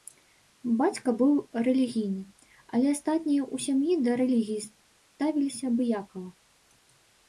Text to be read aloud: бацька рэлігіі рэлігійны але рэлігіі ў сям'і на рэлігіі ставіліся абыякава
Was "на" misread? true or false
true